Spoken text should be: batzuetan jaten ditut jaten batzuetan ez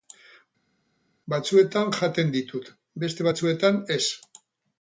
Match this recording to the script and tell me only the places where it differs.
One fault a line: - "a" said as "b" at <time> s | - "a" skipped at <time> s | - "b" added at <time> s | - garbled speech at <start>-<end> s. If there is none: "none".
- "jaten" said as "beste" at 3.1 s